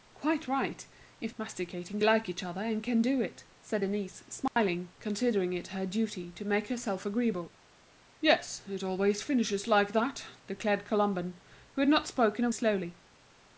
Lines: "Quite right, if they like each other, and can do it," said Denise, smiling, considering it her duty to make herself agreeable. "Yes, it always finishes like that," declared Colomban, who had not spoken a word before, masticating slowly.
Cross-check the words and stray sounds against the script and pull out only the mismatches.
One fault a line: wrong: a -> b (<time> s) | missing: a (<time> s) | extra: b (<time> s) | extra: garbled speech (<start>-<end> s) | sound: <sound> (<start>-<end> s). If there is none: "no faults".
wrong: they -> masticating (1.4 s)
sound: dropout (4.5-4.6 s)
missing: word before masticating (12.5 s)